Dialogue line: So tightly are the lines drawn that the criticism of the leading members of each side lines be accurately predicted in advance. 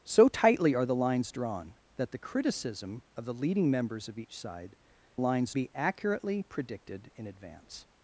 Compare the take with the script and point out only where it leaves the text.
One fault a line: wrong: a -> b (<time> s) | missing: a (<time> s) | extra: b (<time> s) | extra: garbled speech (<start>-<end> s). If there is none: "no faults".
no faults